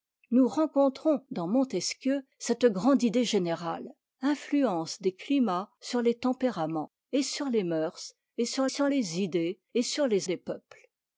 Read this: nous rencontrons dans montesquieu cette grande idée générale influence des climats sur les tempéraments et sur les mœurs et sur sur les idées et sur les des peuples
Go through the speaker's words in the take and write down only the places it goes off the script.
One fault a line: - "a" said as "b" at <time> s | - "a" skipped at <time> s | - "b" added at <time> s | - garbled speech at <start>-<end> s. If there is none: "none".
none